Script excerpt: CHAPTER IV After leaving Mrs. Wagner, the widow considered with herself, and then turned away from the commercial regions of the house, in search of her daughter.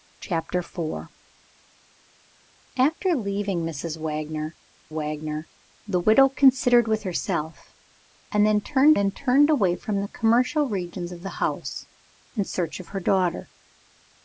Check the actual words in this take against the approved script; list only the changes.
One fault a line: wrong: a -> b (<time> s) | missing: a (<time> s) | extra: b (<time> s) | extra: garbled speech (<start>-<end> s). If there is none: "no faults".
extra: wagner (4.9 s)
extra: then turned (8.9 s)